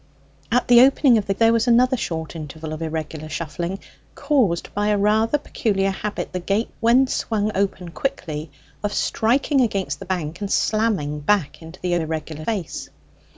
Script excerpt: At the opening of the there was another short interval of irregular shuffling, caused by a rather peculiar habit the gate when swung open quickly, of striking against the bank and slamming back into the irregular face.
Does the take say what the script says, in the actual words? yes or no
yes